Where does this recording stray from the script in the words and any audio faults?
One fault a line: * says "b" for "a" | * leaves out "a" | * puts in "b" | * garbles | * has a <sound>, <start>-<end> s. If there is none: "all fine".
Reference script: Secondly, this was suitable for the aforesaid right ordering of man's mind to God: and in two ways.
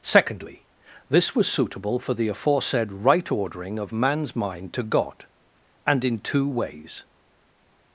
all fine